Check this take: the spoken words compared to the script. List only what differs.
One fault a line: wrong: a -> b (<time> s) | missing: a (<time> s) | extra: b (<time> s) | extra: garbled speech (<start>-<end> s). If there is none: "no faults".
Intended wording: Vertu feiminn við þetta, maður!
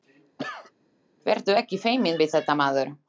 extra: ekki (1.6 s)